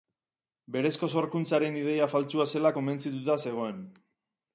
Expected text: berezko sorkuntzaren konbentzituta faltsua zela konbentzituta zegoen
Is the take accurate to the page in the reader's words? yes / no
no